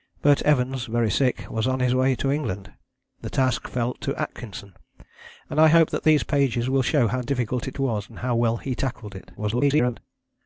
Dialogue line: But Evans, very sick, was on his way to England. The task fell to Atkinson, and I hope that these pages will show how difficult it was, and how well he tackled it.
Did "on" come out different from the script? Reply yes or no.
no